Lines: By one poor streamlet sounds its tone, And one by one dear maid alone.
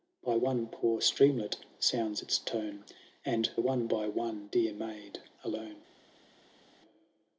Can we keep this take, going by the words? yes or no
yes